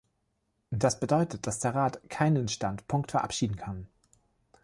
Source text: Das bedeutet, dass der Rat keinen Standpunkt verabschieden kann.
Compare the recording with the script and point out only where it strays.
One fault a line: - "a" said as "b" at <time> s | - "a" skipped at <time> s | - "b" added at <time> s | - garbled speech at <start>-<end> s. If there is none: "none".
none